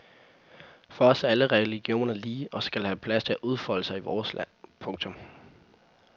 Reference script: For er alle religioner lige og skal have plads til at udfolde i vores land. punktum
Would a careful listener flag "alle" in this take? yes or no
no